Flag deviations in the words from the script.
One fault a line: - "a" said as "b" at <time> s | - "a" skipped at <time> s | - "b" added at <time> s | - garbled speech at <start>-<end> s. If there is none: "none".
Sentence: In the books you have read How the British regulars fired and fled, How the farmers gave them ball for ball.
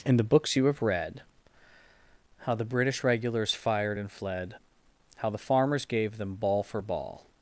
none